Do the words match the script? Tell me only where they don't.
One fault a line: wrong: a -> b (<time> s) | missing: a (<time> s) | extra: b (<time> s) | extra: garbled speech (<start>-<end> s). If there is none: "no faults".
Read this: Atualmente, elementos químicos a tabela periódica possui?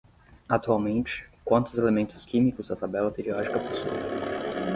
extra: quantos (1.4 s)